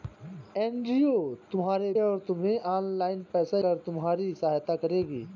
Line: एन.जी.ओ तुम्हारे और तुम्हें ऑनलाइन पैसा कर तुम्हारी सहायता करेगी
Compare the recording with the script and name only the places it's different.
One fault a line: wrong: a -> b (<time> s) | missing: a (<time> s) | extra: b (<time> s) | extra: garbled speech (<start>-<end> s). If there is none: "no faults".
no faults